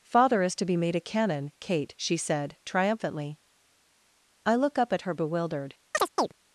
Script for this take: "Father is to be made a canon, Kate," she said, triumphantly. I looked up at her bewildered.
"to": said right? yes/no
yes